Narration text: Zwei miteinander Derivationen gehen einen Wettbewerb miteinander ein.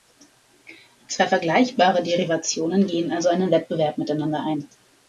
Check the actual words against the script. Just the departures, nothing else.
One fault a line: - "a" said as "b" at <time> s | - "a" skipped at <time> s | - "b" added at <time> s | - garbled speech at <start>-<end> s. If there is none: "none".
- "miteinander" said as "vergleichbare" at 1.3 s
- "also" added at 3.1 s